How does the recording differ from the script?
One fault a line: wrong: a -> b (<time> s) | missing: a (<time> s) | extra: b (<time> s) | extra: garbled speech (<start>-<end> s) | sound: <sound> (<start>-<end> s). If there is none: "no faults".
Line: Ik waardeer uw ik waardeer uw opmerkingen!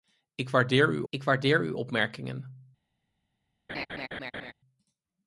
sound: laugh (3.7-4.5 s)